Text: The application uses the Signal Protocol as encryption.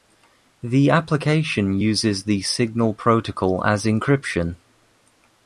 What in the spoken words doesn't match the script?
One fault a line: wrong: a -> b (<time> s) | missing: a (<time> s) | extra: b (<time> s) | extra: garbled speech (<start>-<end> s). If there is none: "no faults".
no faults